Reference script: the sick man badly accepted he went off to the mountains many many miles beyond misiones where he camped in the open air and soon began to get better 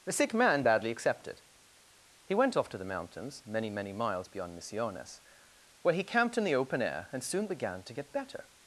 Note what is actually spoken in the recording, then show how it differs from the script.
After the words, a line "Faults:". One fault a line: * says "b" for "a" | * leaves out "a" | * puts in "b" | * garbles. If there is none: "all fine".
the sick man badly accepted he went off to the mountains many many miles beyond misiones where he camped in the open air and soon began to get better
Faults:
all fine